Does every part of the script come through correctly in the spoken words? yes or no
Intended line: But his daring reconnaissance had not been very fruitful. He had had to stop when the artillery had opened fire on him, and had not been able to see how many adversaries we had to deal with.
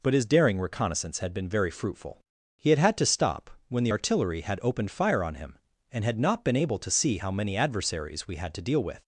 no